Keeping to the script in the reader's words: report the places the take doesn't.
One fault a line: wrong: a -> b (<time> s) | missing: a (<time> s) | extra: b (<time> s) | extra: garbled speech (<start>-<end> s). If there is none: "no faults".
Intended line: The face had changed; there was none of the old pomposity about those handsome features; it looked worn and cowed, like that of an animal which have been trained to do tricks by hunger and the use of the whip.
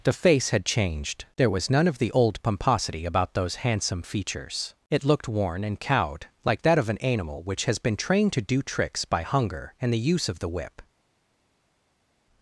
wrong: have -> has (7.7 s)